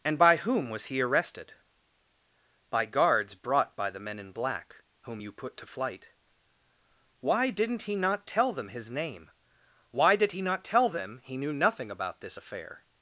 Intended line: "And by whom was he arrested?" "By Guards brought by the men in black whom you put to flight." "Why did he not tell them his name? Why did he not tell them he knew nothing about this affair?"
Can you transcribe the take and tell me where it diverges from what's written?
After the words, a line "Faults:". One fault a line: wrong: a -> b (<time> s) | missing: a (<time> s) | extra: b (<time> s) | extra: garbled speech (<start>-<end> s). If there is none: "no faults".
"And by whom was he arrested?" "By Guards brought by the men in black whom you put to flight." "Why didn't he not tell them his name? Why did he not tell them he knew nothing about this affair?"
Faults:
wrong: did -> didn't (7.5 s)